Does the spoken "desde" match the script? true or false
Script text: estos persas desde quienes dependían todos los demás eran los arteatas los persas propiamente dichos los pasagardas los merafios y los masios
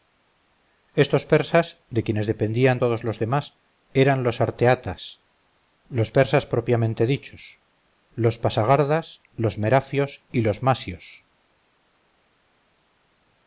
false